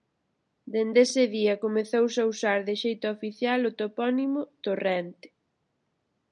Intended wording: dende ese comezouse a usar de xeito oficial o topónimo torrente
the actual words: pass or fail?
fail